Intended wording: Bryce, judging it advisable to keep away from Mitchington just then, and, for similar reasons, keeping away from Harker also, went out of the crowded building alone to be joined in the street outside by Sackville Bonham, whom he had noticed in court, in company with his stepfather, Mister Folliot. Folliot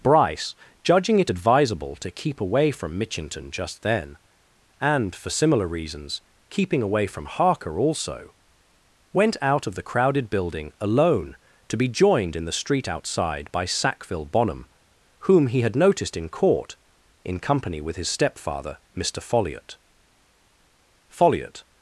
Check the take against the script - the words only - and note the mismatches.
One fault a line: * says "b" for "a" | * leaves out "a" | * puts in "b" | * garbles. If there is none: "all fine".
all fine